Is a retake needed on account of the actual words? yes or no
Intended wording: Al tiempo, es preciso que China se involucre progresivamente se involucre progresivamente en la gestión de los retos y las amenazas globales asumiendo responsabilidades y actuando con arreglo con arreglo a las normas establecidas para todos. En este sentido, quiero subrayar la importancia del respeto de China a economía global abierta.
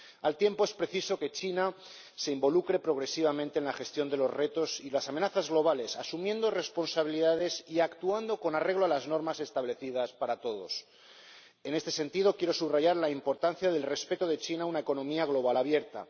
yes